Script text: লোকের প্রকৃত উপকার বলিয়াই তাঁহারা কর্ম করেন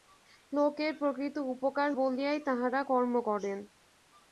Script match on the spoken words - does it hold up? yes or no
yes